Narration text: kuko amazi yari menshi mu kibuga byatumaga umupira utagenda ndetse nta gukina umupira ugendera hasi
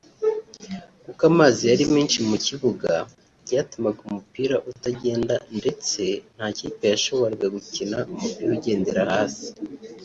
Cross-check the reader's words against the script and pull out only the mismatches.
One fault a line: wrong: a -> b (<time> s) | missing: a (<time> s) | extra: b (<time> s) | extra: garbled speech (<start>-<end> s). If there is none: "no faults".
extra: kipe yashoboraga (6.6 s)